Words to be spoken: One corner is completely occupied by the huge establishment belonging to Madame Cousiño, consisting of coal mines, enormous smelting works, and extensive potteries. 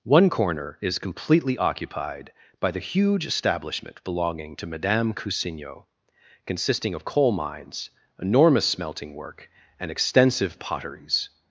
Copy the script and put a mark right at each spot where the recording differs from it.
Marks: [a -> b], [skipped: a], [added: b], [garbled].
One corner is completely occupied by the huge establishment belonging to Madame Cousiño, consisting of coal mines, enormous smelting [works, -> work] and extensive potteries.